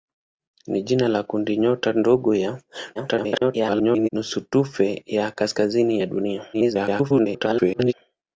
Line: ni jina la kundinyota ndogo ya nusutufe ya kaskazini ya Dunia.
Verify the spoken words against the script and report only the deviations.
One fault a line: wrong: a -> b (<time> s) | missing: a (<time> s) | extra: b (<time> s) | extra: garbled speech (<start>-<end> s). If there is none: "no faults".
extra: garbled speech (2.9-4.1 s)
extra: garbled speech (6.5-7.9 s)